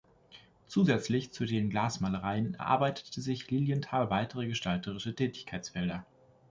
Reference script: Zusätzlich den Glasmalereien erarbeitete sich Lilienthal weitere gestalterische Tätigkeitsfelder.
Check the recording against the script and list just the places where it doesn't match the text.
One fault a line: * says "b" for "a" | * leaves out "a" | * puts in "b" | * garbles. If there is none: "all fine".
* puts in "zu"